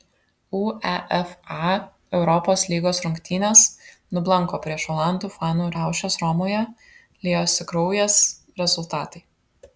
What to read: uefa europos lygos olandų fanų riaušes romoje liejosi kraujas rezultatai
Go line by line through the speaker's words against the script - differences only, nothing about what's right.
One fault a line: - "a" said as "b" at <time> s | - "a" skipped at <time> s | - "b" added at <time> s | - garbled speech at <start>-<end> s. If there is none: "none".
- "rungtynės nublanko prieš" added at 3.0 s